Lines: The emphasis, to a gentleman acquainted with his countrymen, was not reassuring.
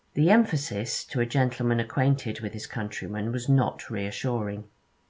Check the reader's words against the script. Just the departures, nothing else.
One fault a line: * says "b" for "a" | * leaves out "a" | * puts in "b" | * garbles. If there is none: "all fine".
all fine